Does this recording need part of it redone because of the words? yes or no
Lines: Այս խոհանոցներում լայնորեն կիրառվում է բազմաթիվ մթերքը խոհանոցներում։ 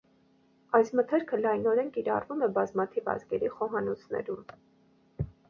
yes